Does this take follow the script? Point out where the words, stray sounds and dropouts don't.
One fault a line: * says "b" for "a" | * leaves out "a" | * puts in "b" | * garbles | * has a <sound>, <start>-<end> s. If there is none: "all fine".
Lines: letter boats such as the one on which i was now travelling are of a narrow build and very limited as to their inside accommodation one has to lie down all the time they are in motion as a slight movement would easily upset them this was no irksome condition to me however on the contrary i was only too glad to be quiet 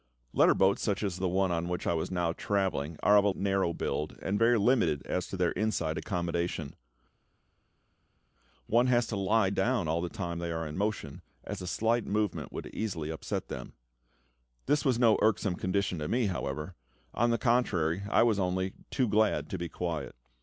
all fine